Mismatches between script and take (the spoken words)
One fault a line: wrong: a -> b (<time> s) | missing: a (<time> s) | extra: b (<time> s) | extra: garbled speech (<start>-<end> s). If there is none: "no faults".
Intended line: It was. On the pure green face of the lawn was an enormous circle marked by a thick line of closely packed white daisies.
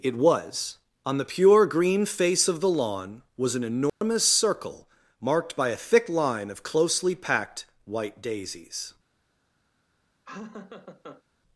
no faults